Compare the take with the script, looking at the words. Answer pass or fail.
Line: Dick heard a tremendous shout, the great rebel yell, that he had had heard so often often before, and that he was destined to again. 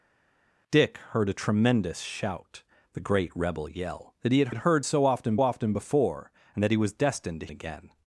pass